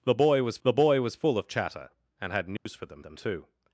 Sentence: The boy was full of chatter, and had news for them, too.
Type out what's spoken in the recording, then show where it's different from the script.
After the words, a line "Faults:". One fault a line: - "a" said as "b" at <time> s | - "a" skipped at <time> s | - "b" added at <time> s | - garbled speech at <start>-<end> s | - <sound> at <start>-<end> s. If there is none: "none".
The boy was the boy was full of chatter, and had news for them them, too.
Faults:
- "the boy was" added at 0.6 s
- dropout at 2.6-2.7 s
- "them" added at 3.0 s